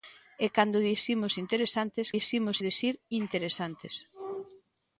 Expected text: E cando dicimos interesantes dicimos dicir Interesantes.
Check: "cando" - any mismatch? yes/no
no